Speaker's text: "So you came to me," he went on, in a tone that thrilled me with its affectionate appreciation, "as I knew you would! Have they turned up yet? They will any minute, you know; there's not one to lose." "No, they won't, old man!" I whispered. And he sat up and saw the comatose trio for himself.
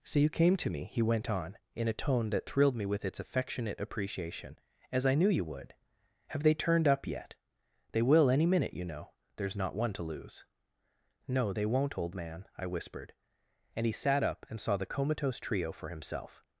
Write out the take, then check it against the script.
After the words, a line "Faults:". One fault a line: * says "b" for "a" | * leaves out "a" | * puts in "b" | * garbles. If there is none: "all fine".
"So you came to me," he went on, in a tone that thrilled me with its affectionate appreciation, "as I knew you would! Have they turned up yet? They will any minute, you know; there's not one to lose." "No, they won't, old man!" I whispered. And he sat up and saw the comatose trio for himself.
Faults:
all fine